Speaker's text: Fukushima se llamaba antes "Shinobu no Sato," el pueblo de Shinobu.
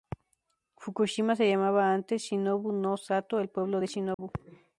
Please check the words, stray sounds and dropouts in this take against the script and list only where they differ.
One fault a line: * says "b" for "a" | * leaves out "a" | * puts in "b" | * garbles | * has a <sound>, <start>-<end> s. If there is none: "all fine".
* has a dropout, 4.1-4.2 s